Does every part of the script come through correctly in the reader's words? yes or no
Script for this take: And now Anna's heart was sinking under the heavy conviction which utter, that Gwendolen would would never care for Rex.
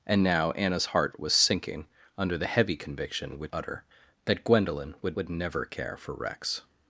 yes